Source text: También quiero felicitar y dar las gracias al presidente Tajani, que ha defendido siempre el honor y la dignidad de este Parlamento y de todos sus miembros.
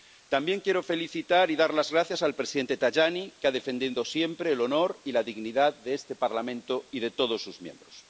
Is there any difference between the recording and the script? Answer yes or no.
no